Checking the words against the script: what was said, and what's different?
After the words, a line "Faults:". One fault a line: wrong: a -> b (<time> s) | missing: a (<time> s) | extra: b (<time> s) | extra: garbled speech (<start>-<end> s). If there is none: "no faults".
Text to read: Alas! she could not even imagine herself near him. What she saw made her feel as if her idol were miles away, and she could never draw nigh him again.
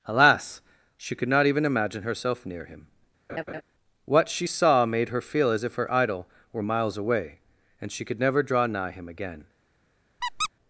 Alas! she could not even imagine herself near him. What she saw made her feel as if her idol were miles away, and she could never draw nigh him again.
Faults:
no faults